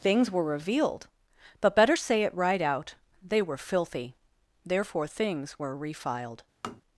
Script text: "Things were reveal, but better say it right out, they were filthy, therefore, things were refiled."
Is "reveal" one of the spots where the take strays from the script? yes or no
yes